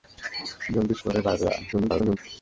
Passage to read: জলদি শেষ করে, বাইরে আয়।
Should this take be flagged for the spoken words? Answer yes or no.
yes